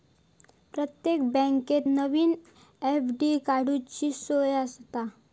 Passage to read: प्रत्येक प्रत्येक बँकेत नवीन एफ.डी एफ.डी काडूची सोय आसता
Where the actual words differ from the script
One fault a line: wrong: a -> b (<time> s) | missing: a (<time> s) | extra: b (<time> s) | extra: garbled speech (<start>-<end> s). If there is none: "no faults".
missing: प्रत्येक (1.2 s)
missing: एफ.डी (3.4 s)